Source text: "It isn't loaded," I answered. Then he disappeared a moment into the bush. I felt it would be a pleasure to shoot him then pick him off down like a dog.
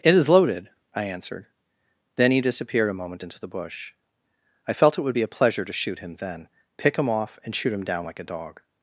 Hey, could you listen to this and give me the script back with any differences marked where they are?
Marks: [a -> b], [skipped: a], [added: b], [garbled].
"It [isn't -> is] loaded," I answered. Then he disappeared a moment into the bush. I felt it would be a pleasure to shoot him then pick him off [added: and shoot him] down like a dog.